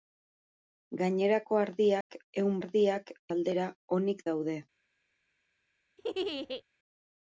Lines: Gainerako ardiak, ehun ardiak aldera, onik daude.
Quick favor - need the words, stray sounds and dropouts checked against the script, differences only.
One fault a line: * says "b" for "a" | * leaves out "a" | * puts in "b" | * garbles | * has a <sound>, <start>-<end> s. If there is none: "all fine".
* has a dropout, 2.0-2.1 s
* has a laugh, 6.0-6.6 s